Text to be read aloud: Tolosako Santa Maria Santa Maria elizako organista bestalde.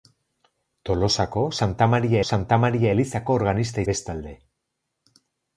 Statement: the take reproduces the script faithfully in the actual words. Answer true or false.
true